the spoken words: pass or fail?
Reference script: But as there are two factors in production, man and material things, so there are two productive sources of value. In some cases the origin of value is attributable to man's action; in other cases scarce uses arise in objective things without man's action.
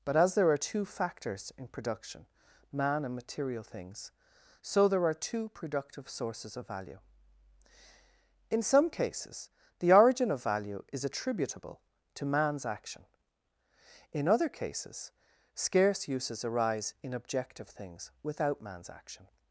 pass